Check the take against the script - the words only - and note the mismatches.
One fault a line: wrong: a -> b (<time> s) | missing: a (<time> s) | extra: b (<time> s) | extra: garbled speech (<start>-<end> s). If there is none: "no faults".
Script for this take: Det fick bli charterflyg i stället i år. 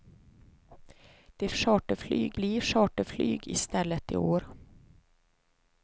wrong: fick -> charterflyg (1.5 s)